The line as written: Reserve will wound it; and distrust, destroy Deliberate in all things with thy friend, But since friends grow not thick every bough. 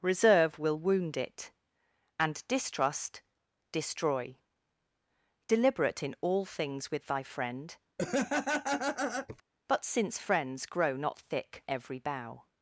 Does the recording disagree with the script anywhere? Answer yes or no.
no